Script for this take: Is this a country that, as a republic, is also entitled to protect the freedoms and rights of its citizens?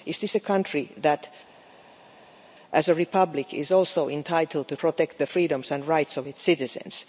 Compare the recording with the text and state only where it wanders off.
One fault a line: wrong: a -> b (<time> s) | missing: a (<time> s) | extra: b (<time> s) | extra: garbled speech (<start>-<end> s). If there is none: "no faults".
no faults